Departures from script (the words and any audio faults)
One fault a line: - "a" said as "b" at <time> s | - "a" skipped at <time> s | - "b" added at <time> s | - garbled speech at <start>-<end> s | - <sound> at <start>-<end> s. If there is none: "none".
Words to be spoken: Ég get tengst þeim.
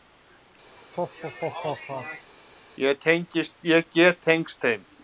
- laugh at 0.8-2.3 s